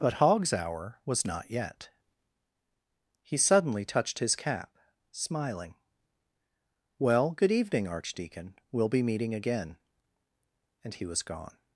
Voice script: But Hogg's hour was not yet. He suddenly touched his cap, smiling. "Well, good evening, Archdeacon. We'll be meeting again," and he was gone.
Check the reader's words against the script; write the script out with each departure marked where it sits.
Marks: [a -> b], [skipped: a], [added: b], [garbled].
But Hogg's hour was not yet. He suddenly touched his cap, smiling. "Well, good evening, Archdeacon. We'll be meeting again," and he was gone.